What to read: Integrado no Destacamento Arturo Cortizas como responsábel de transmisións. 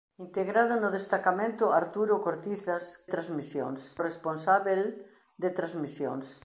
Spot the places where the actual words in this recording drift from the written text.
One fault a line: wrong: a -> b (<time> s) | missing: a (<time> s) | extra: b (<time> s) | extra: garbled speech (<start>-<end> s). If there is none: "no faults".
wrong: como -> transmisións (3.0 s)